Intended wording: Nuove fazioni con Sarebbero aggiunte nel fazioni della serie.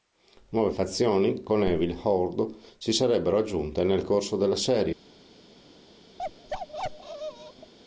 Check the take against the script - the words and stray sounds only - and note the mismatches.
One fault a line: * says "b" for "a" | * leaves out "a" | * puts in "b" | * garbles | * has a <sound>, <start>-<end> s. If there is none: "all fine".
* puts in "Evil Horde si"
* says "corso" for "fazioni"
* has a bark, 6.2-7.7 s